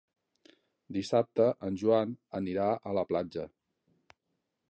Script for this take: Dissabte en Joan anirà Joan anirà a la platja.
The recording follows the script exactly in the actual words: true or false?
false